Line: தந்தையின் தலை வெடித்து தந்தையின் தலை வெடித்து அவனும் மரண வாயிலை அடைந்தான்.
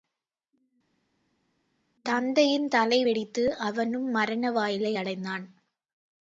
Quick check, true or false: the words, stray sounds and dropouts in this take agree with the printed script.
false